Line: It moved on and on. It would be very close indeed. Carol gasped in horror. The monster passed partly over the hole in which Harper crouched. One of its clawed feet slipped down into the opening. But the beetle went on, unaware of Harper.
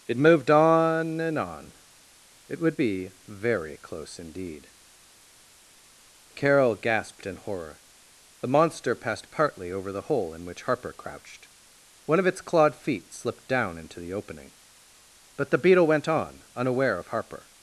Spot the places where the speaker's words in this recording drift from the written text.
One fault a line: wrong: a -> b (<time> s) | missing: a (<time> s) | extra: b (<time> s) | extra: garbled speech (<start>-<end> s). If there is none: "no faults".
no faults